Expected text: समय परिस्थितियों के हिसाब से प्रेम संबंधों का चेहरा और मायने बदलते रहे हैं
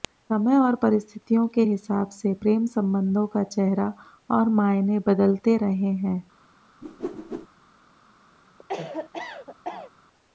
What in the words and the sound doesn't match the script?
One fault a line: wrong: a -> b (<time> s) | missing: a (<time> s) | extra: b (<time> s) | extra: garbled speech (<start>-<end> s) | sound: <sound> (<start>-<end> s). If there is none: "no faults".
extra: और (0.6 s)
sound: whoosh (6.8-7.5 s)
sound: cough (8.6-9.9 s)